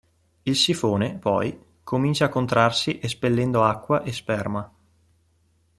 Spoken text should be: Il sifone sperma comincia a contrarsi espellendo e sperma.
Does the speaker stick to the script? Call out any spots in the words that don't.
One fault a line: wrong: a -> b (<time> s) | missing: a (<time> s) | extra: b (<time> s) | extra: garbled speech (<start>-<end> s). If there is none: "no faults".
wrong: sperma -> poi (1.2 s)
extra: acqua (3.6 s)